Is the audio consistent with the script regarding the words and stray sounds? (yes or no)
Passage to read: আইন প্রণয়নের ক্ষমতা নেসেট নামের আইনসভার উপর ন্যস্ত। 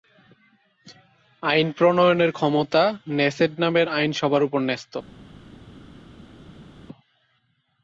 yes